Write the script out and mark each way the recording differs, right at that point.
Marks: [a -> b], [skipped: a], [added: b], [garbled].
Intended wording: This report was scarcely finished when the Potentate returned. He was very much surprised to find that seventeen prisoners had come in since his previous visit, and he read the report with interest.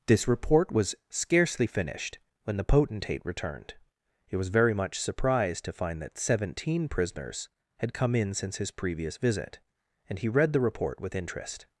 This report was scarcely finished when the Potentate returned. He was very much surprised to find that seventeen prisoners had come in since his previous visit, and he read the report with interest.